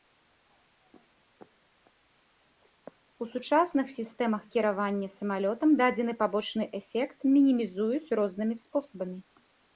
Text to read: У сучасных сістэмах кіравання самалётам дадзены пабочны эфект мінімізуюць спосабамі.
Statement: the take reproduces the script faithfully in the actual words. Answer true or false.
false